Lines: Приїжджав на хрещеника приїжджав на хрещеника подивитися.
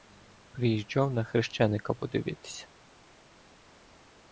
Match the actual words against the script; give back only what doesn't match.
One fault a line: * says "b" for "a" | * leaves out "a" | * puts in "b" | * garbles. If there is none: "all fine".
* leaves out "приїжджав на хрещеника"